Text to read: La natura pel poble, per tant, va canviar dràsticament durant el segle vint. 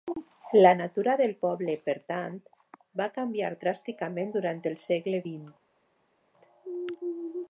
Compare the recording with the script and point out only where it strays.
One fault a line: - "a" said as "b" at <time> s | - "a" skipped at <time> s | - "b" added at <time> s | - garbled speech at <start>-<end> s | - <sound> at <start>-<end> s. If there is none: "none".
- "pel" said as "del" at 1.2 s